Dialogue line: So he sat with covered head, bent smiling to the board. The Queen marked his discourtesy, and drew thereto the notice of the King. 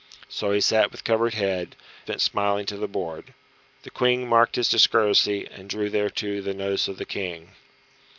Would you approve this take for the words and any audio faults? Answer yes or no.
yes